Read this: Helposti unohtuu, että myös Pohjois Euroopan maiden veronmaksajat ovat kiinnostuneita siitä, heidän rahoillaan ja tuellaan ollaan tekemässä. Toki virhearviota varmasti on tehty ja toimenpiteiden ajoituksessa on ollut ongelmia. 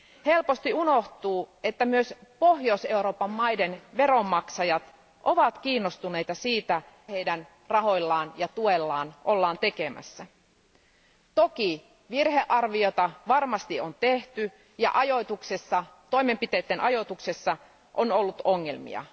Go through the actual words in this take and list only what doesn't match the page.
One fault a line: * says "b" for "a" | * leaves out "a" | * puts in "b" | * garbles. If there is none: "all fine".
all fine